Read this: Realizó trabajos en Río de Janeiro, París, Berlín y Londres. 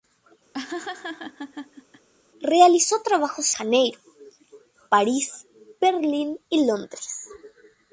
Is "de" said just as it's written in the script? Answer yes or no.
no